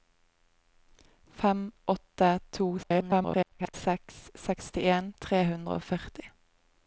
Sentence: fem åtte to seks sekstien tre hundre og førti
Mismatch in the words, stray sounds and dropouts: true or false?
true